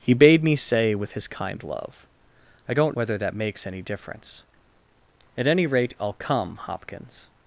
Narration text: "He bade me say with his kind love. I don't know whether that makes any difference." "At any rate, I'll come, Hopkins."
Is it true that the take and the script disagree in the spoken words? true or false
true